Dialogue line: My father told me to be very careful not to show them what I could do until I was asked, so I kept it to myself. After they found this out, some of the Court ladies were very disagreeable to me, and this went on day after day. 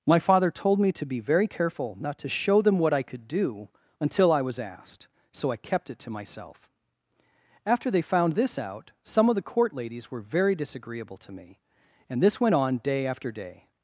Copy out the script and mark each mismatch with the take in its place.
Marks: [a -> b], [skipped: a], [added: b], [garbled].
My father told me to be very careful not to show them what I could do until I was asked, so I kept it to myself. After they found this out, some of the Court ladies were very disagreeable to me, and this went on day after day.